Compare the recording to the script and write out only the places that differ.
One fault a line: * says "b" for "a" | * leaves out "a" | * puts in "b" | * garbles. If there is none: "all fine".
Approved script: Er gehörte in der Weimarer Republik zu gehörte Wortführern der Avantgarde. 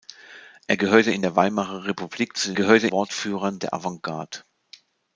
all fine